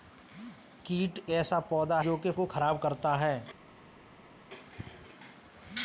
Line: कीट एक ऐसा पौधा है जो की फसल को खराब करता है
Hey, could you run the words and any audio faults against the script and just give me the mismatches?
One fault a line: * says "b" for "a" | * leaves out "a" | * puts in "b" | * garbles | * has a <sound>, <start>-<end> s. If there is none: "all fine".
* leaves out "एक"
* leaves out "है"
* leaves out "फसल"